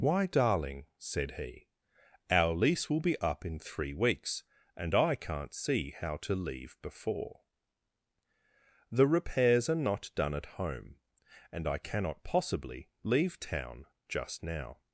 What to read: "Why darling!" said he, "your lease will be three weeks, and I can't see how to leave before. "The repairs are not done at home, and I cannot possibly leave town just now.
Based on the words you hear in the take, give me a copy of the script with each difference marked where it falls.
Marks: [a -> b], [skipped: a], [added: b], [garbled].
"Why darling!" said he, ["your -> our] lease will be [added: up in] three weeks, and I can't see how to leave before. "The repairs are not done at home, and I cannot possibly leave town just now.